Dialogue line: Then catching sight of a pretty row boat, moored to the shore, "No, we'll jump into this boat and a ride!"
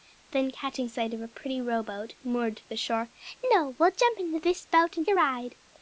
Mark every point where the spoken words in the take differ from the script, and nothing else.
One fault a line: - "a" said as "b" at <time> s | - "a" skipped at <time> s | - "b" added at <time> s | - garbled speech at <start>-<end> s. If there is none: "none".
none